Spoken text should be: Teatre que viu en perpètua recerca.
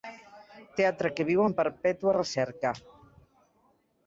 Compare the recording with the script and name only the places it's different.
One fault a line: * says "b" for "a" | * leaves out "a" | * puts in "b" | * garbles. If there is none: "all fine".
all fine